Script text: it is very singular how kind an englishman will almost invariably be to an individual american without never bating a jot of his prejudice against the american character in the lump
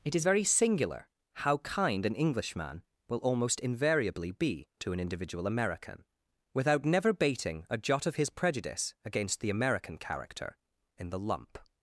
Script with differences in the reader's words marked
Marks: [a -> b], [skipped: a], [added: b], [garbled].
it is very singular how kind an englishman will almost invariably be to an individual american without never bating a jot of his prejudice against the american character in the lump